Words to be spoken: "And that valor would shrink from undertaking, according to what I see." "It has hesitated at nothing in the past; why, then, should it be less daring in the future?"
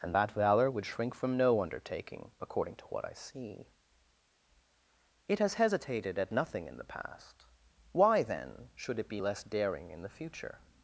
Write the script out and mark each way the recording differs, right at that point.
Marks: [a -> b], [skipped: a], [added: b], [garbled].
"And that valor would shrink from [added: no] undertaking, according to what I see." "It has hesitated at nothing in the past; why, then, should it be less daring in the future?"